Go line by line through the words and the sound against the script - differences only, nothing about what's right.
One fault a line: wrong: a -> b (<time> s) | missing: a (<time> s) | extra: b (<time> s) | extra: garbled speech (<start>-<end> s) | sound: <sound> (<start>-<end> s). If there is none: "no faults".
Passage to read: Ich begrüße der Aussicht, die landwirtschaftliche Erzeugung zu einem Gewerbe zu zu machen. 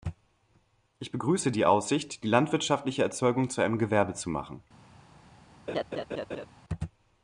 wrong: der -> die (1.5 s)
missing: zu (4.3 s)
sound: laugh (5.7-6.5 s)